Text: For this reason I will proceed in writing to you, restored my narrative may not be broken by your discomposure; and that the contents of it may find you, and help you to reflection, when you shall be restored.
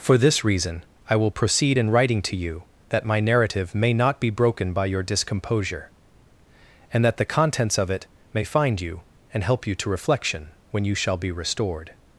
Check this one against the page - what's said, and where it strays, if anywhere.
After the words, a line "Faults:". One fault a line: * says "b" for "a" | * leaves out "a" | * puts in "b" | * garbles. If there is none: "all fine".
For this reason I will proceed in writing to you, that my narrative may not be broken by your discomposure; and that the contents of it may find you, and help you to reflection, when you shall be restored.
Faults:
* says "that" for "restored"